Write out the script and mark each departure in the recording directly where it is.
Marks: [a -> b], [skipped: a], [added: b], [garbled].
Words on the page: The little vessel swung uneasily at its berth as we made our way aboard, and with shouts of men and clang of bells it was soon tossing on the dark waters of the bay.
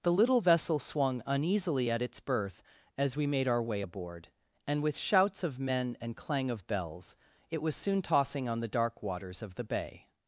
The little vessel swung uneasily at its berth as we made our way aboard, and with shouts of men and clang of bells it was soon tossing on the dark waters of the bay.